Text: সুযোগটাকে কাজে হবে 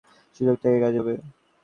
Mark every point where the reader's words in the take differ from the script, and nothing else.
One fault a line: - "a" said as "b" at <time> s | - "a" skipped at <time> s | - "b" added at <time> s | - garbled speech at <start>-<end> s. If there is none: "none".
none